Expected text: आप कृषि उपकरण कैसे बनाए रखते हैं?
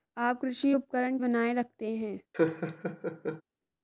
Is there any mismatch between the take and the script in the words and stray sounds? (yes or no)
yes